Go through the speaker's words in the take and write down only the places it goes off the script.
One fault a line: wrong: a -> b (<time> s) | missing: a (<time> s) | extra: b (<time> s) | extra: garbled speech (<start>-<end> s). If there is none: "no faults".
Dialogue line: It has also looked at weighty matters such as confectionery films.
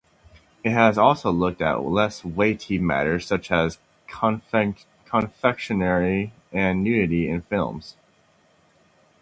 extra: less (1.8 s)
extra: and nudity in (6.5 s)